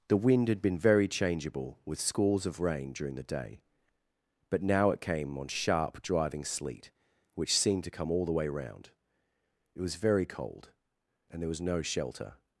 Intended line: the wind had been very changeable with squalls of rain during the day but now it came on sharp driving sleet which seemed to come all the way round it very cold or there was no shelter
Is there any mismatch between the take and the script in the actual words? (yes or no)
yes